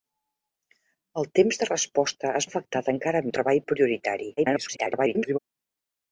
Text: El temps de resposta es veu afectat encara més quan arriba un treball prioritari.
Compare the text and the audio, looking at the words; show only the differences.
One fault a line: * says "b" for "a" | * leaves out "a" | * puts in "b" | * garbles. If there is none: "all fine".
* leaves out "veu"
* leaves out "més quan arriba"
* garbles